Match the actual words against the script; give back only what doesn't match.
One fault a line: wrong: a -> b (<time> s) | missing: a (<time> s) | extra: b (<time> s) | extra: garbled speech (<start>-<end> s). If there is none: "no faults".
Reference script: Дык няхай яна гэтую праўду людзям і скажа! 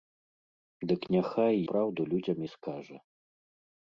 missing: яна гэтую (1.6 s)